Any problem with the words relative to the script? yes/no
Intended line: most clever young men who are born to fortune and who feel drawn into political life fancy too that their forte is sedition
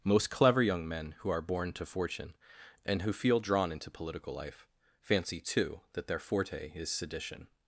no